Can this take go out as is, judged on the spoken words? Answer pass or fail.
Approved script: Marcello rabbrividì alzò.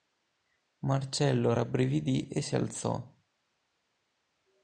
fail